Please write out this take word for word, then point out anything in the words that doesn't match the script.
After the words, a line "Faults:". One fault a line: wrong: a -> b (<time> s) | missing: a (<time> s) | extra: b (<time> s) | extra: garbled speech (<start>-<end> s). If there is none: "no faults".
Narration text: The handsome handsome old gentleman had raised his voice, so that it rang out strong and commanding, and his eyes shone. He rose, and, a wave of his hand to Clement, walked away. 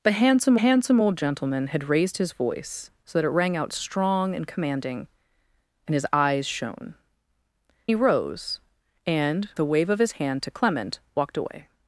The handsome handsome old gentleman had raised his voice, so that it rang out strong and commanding, and his eyes shone. He rose, and, a wave of his hand to Clement, walked away.
Faults:
no faults